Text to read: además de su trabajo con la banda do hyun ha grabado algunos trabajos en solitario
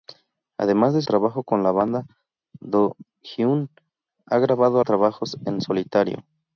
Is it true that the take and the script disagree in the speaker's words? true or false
true